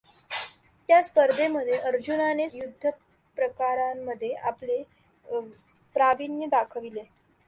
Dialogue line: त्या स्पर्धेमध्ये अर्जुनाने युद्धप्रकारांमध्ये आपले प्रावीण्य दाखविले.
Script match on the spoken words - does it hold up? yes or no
yes